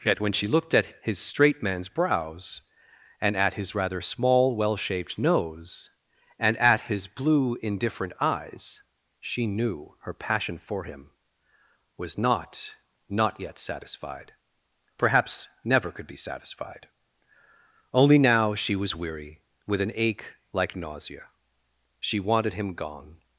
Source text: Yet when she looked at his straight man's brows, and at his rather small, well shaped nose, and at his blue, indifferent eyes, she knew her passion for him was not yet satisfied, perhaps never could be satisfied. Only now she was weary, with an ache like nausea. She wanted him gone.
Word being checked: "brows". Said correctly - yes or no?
yes